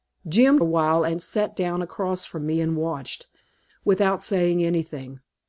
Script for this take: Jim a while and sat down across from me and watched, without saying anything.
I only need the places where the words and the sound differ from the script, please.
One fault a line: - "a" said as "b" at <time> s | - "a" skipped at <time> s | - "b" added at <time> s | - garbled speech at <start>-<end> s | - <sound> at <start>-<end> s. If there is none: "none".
none